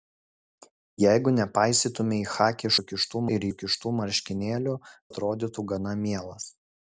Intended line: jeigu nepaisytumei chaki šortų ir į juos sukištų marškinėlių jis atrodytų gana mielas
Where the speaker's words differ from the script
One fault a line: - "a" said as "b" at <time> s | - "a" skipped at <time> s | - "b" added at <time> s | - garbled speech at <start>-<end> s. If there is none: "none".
- "šortų" said as "sukištų" at 2.8 s
- "juos" skipped at 3.5 s
- "jis" skipped at 4.8 s